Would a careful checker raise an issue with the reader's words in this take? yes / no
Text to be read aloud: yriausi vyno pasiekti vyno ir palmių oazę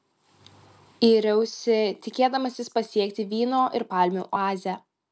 yes